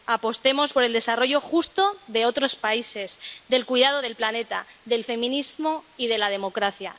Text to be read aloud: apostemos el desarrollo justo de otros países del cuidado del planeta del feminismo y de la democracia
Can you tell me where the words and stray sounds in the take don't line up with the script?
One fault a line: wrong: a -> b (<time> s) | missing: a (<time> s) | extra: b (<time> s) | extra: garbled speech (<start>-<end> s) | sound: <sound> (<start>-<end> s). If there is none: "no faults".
extra: por (0.7 s)